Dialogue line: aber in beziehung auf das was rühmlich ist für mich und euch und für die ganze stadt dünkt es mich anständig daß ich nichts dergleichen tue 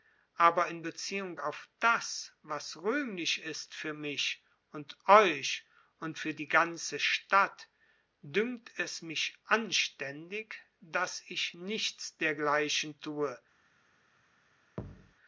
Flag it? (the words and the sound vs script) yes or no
yes